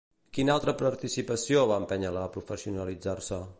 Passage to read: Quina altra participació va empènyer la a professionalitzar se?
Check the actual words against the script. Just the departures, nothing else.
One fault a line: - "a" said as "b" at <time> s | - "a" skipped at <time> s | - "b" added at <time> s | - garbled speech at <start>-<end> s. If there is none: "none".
none